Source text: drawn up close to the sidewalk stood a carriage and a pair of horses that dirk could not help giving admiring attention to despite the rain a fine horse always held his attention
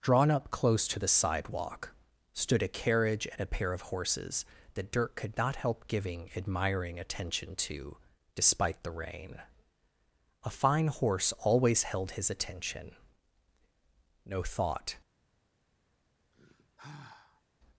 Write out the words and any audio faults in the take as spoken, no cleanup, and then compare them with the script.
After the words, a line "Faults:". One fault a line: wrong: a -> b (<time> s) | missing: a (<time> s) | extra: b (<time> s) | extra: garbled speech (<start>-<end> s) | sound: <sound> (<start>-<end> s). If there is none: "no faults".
drawn up close to the sidewalk stood a carriage and a pair of horses that dirk could not help giving admiring attention to despite the rain a fine horse always held his attention no thought
Faults:
extra: no thought (14.2 s)
sound: sigh (16.3-17.4 s)